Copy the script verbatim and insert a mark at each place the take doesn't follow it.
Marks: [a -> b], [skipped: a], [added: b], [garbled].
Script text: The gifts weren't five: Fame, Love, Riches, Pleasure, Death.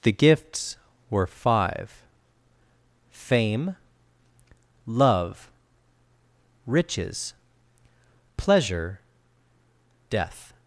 The gifts [weren't -> were] five: Fame, Love, Riches, Pleasure, Death.